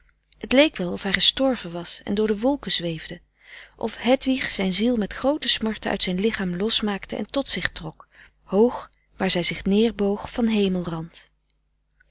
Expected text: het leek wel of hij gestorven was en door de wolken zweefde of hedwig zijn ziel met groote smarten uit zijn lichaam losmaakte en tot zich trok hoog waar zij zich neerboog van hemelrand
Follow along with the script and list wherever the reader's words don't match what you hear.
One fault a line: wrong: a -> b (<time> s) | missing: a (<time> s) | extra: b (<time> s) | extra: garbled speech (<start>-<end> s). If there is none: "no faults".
no faults